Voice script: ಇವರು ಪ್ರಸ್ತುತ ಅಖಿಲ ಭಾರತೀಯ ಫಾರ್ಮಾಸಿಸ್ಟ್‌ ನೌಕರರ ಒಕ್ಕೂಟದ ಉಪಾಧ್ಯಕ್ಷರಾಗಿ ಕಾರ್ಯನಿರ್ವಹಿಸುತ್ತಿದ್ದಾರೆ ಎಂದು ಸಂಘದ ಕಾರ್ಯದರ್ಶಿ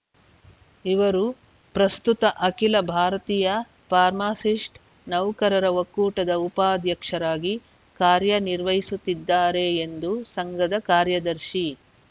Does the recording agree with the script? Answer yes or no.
yes